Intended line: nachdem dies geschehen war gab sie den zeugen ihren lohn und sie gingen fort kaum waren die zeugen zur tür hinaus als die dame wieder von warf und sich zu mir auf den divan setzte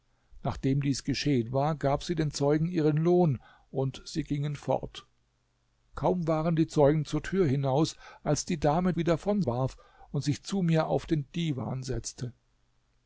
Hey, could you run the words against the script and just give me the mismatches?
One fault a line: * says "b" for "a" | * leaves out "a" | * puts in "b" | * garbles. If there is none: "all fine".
all fine